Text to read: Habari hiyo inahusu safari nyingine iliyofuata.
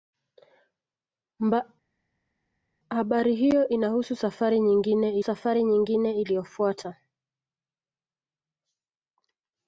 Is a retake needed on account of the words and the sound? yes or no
yes